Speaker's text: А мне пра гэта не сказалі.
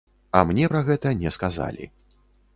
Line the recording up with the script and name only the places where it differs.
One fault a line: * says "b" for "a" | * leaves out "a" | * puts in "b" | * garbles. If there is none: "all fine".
all fine